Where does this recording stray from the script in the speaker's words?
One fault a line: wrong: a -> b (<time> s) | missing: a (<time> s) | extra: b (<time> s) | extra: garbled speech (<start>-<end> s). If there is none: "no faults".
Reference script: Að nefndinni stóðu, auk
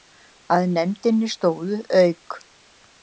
no faults